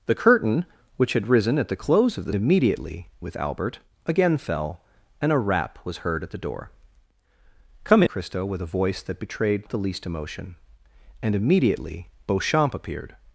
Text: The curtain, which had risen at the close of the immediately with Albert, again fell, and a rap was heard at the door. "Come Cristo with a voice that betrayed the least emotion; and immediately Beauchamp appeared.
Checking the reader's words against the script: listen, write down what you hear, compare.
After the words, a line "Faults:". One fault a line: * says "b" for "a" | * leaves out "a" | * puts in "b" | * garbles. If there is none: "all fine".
The curtain, which had risen at the close of the immediately with Albert, again fell, and a rap was heard at the door. "Come Cristo with a voice that betrayed the least emotion; and immediately Beauchamp appeared.
Faults:
all fine